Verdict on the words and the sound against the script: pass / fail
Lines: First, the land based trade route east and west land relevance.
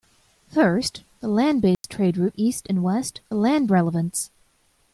fail